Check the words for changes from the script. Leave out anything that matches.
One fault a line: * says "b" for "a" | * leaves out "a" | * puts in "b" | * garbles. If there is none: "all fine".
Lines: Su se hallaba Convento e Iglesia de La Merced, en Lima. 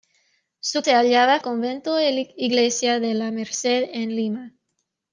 all fine